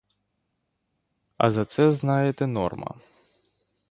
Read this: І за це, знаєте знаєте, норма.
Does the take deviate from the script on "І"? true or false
true